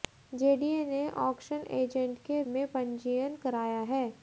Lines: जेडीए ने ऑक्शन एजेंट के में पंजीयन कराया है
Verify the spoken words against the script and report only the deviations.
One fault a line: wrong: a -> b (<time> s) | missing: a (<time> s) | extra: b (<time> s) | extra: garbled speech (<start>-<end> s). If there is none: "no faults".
no faults